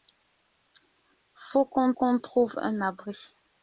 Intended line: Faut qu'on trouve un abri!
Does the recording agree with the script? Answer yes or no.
no